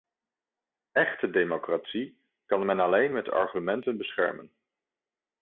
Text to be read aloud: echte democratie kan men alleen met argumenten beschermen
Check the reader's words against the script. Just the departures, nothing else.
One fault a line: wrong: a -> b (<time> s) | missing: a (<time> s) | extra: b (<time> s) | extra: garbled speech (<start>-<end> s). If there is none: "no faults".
no faults